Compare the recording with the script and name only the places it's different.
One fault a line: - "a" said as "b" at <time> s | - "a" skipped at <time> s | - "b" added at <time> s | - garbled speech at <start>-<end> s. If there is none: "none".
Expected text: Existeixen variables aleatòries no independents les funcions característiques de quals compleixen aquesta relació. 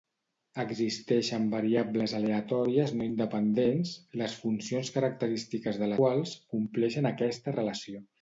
none